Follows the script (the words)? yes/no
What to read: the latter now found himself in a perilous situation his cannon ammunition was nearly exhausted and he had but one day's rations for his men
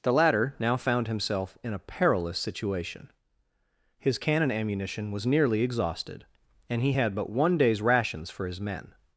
yes